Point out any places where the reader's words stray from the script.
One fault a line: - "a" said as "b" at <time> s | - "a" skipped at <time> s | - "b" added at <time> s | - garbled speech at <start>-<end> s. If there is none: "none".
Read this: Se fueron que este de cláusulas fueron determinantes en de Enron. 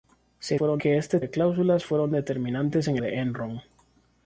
none